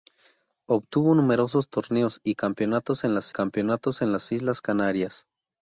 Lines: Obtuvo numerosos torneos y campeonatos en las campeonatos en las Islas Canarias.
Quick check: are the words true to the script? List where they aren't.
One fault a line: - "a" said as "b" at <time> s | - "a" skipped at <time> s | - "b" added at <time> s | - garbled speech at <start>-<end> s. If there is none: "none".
none